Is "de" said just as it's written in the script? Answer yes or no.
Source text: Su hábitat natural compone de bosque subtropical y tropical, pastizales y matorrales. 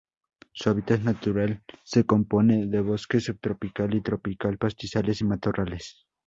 yes